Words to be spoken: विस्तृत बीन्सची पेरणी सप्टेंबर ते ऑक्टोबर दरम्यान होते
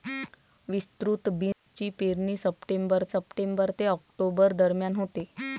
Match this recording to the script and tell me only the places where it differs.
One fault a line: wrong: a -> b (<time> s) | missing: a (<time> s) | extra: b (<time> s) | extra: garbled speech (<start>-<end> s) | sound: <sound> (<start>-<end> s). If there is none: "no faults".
sound: dropout (1.5-1.7 s)
extra: सप्टेंबर (3.1 s)